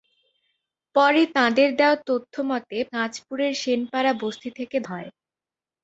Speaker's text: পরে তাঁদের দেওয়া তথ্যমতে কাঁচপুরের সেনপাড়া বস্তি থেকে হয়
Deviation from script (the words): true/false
false